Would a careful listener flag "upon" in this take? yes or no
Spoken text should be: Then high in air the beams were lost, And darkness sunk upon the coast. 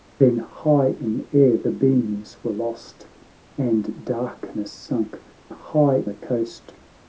yes